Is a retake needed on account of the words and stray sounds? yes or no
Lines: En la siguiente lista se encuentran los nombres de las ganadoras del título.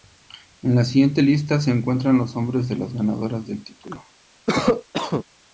yes